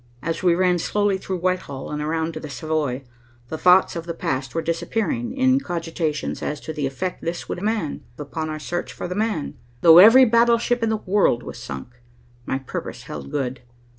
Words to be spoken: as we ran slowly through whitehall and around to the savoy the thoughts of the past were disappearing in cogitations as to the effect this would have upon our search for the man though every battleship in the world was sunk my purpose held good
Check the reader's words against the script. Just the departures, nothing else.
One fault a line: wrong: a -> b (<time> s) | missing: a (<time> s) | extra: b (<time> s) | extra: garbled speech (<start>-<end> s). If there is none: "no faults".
wrong: have -> man (7.6 s)